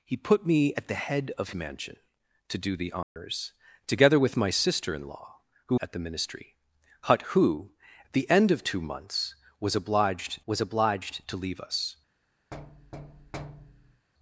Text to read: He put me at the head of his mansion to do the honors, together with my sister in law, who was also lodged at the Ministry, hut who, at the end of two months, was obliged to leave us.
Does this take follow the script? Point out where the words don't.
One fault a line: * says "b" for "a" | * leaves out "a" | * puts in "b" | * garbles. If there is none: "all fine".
* leaves out "his"
* leaves out "was also lodged"
* puts in "was obliged"